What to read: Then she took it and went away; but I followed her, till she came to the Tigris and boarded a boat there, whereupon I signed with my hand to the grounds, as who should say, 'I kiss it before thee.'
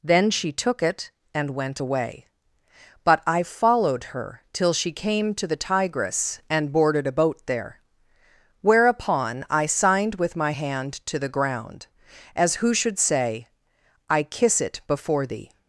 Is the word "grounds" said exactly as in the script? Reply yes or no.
no